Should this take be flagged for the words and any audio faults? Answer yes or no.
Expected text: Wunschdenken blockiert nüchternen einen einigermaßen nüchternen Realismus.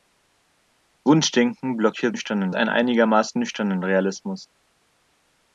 no